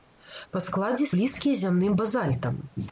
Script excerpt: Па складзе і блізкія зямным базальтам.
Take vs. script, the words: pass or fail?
pass